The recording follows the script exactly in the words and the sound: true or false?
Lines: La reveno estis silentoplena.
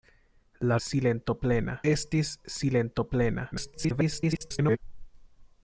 false